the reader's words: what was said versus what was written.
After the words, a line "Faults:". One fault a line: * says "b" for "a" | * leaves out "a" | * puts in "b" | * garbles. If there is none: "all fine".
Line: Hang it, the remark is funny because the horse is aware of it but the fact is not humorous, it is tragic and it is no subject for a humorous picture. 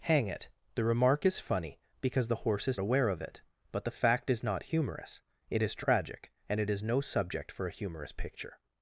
Hang it, the remark is funny because the horse is aware of it but the fact is not humorous, it is tragic and it is no subject for a humorous picture.
Faults:
all fine